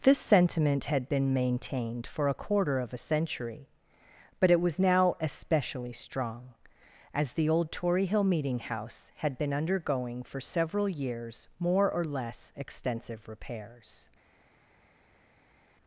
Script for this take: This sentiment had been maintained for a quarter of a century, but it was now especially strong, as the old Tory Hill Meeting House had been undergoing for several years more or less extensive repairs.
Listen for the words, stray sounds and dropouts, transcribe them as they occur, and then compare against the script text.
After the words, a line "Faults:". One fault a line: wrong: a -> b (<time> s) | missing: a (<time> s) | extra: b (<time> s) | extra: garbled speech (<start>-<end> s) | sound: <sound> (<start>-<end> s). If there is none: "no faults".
This sentiment had been maintained for a quarter of a century, but it was now especially strong, as the old Tory Hill Meeting House had been undergoing for several years more or less extensive repairs.
Faults:
no faults